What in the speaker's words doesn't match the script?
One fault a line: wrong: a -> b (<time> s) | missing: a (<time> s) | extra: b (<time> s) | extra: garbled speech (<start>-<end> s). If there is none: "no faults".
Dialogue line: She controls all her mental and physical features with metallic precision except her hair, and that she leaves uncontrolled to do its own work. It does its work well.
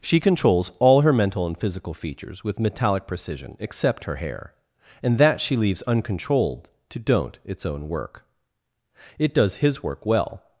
wrong: do -> don't (7.0 s)
wrong: its -> his (9.6 s)